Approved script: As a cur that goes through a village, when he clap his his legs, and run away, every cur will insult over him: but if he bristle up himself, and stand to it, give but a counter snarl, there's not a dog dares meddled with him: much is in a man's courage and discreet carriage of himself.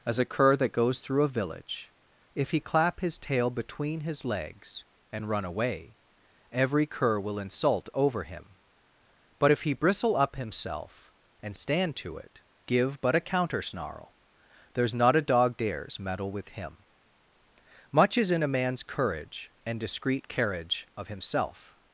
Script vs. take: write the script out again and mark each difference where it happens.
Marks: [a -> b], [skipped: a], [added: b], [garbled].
As a cur that goes through a village, [when -> if] he clap his [added: tail between] his legs, and run away, every cur will insult over him: but if he bristle up himself, and stand to it, give but a counter snarl, there's not a dog dares [meddled -> meddle] with him: much is in a man's courage and discreet carriage of himself.